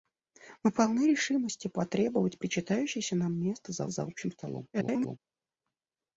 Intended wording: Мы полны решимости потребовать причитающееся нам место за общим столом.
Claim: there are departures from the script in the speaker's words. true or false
true